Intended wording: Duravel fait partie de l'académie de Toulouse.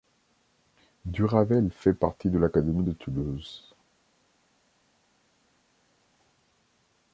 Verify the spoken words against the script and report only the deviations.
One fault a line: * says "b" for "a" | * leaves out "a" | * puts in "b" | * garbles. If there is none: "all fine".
all fine